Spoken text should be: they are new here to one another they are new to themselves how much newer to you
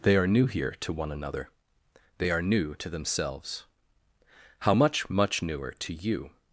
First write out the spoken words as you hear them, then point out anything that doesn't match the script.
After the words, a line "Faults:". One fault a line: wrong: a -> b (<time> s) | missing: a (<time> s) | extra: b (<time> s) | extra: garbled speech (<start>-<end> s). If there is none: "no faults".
they are new here to one another they are new to themselves how much much newer to you
Faults:
extra: much (5.1 s)